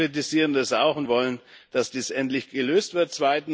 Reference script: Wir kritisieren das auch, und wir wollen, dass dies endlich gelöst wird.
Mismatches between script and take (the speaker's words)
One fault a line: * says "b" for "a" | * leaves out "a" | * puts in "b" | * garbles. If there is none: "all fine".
* leaves out "wir"